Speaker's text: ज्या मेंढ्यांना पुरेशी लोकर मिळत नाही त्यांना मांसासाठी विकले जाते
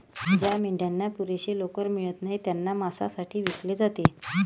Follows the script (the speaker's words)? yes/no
yes